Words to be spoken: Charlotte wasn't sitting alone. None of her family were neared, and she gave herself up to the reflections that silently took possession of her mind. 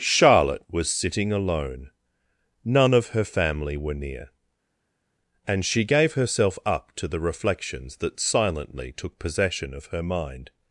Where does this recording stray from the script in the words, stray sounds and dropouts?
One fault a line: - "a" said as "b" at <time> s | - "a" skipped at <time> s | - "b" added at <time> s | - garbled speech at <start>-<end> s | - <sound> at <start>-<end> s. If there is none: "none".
- "wasn't" said as "was" at 0.7 s
- "neared" said as "near" at 3.9 s